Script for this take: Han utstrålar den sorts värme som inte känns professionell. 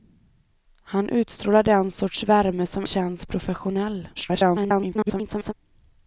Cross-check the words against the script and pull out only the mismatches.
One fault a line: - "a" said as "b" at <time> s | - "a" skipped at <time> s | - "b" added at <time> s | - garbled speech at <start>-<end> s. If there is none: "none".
- "inte" skipped at 2.9 s
- garbled speech at 4.2-5.5 s